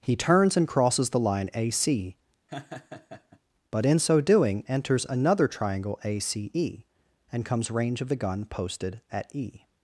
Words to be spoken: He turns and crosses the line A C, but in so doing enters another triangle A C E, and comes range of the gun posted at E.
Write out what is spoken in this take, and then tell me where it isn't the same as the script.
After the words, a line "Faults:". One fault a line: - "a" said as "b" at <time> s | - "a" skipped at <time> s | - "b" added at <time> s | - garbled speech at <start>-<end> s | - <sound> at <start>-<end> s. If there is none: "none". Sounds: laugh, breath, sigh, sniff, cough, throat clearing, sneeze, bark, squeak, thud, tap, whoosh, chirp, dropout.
He turns and crosses the line A C, but in so doing enters another triangle A C E, and comes range of the gun posted at E.
Faults:
- laugh at 2.5-3.4 s